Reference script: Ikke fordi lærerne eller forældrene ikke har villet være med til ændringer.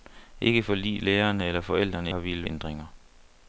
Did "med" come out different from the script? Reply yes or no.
yes